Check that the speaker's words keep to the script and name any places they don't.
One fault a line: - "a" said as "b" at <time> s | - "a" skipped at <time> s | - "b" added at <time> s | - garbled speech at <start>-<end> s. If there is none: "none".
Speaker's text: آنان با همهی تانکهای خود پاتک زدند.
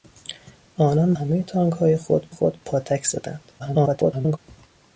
- "با" skipped at 1.1 s
- "خود" added at 2.3 s
- garbled speech at 3.6-4.4 s